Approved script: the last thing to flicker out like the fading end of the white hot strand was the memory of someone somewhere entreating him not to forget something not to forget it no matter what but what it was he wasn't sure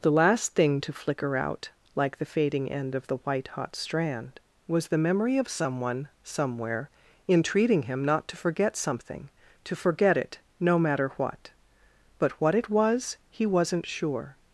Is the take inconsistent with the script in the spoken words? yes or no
yes